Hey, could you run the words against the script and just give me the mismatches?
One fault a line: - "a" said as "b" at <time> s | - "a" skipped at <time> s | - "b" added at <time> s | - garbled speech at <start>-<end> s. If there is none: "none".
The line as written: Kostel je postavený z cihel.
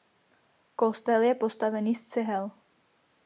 none